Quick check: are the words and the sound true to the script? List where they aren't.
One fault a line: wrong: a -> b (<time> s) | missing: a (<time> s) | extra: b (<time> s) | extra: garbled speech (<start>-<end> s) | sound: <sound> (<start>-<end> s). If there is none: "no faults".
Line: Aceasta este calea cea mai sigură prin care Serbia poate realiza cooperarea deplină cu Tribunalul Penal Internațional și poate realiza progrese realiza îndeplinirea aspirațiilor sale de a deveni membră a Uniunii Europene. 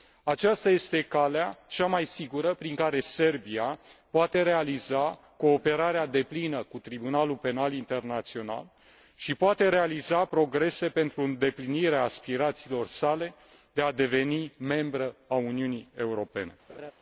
wrong: realiza -> pentru (10.9 s)
sound: laugh (16.7-16.9 s)